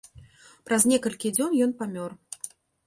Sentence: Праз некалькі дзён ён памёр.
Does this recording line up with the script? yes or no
yes